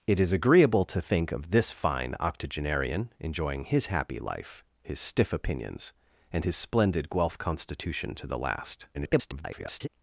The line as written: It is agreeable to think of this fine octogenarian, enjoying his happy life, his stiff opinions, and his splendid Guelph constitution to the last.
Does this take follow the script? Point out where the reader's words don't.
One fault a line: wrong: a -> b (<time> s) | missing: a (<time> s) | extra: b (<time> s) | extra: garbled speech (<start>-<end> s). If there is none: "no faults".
extra: garbled speech (8.9-9.9 s)